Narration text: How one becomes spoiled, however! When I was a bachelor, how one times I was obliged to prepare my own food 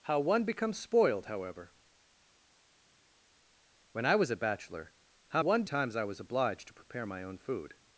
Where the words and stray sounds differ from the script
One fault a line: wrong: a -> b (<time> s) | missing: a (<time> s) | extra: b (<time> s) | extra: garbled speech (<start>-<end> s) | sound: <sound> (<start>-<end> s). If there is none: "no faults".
no faults